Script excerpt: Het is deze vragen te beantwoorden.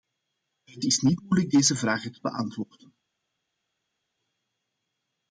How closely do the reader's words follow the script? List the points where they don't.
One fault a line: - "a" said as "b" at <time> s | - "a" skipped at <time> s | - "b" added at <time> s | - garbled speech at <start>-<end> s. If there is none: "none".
- "niet moeilijk" added at 1.0 s